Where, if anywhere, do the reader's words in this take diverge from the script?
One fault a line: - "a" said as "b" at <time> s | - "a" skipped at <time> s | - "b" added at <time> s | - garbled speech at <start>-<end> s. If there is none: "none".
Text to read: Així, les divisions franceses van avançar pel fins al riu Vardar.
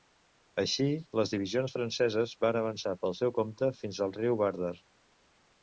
- "seu compte" added at 3.2 s